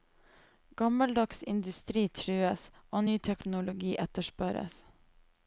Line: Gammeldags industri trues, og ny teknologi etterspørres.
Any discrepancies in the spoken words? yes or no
no